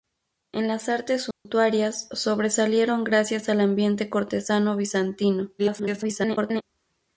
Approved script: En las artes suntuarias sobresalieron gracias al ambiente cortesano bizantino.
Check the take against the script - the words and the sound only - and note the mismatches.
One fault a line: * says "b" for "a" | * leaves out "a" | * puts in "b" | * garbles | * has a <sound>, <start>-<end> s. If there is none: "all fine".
* has a dropout, 1.3-1.5 s
* garbles